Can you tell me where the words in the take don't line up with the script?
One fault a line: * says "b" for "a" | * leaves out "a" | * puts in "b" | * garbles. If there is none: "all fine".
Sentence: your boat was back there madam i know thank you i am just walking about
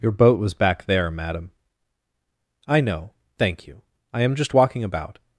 all fine